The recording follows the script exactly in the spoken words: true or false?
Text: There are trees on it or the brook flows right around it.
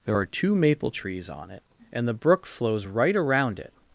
false